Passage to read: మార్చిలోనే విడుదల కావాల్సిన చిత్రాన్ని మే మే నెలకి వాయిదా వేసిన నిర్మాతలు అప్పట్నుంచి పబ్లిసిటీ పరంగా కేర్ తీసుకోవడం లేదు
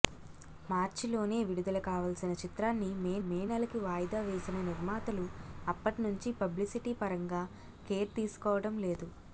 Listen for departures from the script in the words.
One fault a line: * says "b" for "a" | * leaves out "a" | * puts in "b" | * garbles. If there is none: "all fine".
all fine